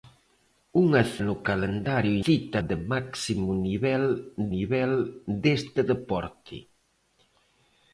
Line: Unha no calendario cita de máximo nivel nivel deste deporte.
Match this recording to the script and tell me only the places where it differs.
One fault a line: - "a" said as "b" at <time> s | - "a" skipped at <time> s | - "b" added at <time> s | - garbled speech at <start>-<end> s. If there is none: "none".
none